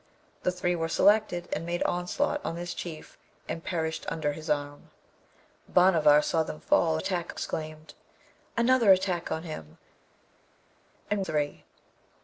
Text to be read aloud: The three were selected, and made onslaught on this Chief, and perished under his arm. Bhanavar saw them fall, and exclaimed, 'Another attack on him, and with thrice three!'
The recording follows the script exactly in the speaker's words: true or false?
false